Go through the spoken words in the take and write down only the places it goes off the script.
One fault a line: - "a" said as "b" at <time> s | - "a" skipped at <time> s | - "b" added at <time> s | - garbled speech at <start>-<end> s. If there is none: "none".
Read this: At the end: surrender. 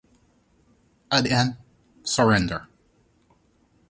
none